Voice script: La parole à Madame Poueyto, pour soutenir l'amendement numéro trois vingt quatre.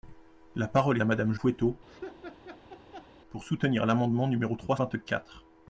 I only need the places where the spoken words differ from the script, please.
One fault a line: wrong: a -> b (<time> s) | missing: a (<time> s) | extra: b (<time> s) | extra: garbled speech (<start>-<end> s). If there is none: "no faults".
no faults